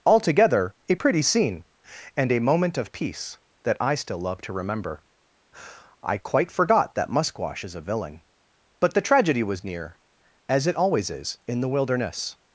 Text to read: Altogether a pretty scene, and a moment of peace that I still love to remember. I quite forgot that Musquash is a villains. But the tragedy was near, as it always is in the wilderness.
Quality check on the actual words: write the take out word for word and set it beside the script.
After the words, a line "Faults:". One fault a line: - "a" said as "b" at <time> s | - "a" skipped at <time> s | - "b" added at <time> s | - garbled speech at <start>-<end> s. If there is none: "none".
Altogether a pretty scene, and a moment of peace that I still love to remember. I quite forgot that Musquash is a villain. But the tragedy was near, as it always is in the wilderness.
Faults:
- "villains" said as "villain" at 7.8 s